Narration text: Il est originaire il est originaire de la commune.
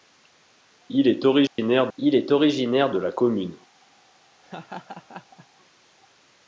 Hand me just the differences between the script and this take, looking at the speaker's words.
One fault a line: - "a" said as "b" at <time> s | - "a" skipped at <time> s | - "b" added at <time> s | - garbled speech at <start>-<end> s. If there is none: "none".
none